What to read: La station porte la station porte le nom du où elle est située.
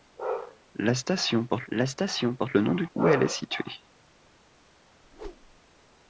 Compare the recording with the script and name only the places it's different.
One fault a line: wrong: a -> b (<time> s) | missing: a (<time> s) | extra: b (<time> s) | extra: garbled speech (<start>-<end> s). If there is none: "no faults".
no faults